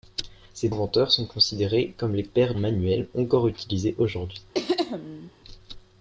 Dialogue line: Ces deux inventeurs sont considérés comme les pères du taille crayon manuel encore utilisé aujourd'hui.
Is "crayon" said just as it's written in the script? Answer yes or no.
no